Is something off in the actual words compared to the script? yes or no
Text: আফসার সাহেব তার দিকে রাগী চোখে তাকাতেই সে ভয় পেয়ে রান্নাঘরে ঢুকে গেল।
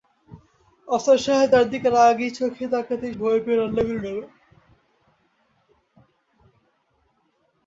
yes